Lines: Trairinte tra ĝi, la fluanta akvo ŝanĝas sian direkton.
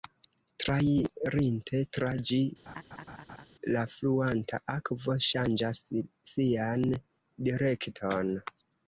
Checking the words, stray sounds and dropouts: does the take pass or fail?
fail